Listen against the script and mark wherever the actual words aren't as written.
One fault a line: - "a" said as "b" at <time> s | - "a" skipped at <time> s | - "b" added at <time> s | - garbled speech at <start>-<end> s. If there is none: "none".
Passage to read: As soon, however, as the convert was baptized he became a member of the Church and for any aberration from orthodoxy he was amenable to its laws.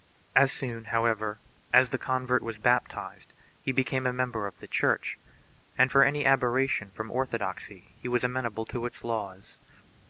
none